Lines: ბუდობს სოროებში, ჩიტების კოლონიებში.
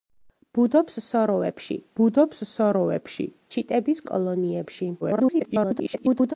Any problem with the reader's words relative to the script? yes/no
yes